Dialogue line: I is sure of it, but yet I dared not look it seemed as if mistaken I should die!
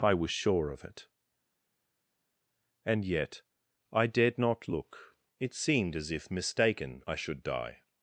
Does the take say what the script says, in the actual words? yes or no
no